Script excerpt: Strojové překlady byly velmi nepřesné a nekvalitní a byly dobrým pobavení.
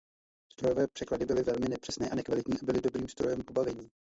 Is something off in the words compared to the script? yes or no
yes